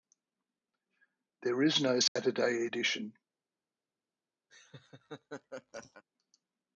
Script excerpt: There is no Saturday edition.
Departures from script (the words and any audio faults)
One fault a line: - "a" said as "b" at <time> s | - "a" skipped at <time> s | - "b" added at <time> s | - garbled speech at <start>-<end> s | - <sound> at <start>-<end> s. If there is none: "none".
- dropout at 2.1-2.2 s
- laugh at 4.5-6.0 s